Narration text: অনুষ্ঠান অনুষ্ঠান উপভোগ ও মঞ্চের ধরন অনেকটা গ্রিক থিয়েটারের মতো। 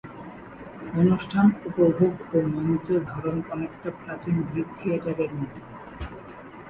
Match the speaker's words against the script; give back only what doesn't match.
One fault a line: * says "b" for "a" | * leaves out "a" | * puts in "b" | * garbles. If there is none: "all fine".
* leaves out "অনুষ্ঠান"
* puts in "প্রাচীন"